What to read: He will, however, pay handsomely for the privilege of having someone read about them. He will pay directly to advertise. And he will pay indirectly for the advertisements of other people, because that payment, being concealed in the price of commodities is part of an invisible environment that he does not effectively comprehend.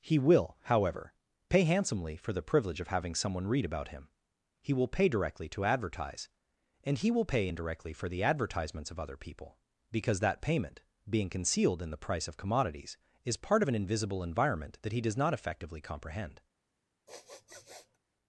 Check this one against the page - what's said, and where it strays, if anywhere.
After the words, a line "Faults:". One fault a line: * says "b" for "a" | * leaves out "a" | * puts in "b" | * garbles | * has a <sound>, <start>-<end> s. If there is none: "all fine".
He will, however, pay handsomely for the privilege of having someone read about him. He will pay directly to advertise. And he will pay indirectly for the advertisements of other people, because that payment, being concealed in the price of commodities is part of an invisible environment that he does not effectively comprehend.
Faults:
* says "him" for "them"
* has a sniff, 17.1-18.0 s